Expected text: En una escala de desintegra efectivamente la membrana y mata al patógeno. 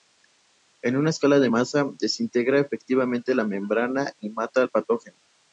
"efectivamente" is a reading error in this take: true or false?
false